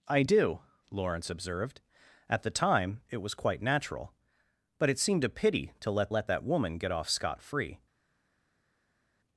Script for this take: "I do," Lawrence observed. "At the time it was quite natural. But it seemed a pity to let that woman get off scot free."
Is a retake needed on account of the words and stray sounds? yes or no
yes